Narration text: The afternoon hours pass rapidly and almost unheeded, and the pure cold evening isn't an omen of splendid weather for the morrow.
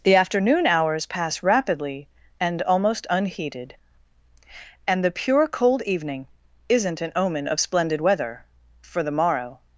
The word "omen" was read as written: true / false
true